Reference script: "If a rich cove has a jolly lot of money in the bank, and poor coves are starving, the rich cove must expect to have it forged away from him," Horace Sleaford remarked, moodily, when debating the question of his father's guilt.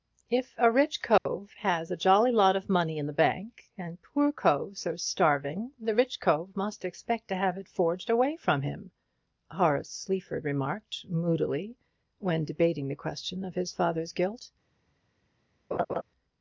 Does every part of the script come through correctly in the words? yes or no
yes